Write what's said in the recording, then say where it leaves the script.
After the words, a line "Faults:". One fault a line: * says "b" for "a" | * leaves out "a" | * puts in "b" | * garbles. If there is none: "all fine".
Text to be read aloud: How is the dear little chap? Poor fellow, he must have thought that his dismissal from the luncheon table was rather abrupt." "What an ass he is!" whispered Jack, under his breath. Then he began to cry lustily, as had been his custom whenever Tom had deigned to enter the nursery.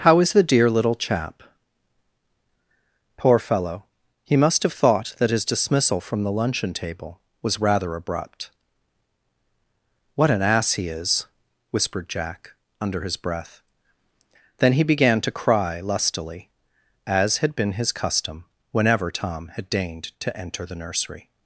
How is the dear little chap? Poor fellow, he must have thought that his dismissal from the luncheon table was rather abrupt." "What an ass he is!" whispered Jack, under his breath. Then he began to cry lustily, as had been his custom whenever Tom had deigned to enter the nursery.
Faults:
all fine